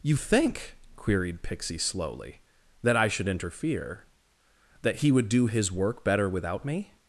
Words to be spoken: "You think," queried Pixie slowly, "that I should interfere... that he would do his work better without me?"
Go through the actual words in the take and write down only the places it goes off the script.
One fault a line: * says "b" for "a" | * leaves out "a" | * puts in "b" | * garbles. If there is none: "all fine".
all fine